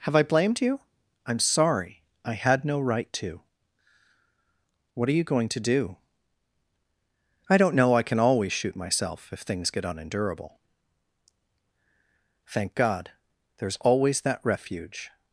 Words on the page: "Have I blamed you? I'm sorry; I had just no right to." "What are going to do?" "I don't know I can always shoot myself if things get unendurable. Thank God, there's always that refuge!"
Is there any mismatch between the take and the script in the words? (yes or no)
yes